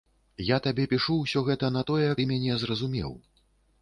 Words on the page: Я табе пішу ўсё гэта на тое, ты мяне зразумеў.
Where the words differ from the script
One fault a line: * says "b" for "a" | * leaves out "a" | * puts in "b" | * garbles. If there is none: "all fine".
all fine